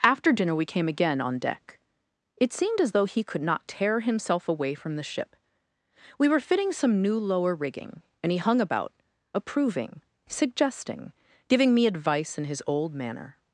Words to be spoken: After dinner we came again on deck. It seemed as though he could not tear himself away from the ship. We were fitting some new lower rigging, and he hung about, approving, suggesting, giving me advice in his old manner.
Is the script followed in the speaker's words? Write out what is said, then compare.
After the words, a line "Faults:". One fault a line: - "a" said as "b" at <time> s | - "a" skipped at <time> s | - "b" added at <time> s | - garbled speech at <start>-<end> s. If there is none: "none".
After dinner we came again on deck. It seemed as though he could not tear himself away from the ship. We were fitting some new lower rigging, and he hung about, approving, suggesting, giving me advice in his old manner.
Faults:
none